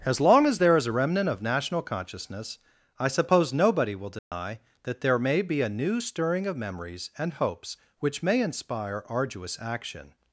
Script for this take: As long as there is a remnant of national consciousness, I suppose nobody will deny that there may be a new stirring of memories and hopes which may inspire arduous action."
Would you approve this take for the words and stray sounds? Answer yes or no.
no